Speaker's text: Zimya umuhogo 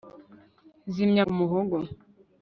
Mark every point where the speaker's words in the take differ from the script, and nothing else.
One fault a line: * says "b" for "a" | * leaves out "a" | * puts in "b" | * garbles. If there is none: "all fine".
all fine